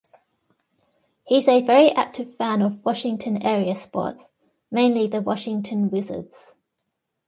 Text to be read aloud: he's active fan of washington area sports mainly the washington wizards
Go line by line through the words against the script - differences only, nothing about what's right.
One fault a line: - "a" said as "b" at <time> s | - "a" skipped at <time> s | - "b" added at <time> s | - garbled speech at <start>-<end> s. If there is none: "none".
- "a very" added at 1.5 s